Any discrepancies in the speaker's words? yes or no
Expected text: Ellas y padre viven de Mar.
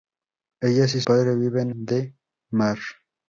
no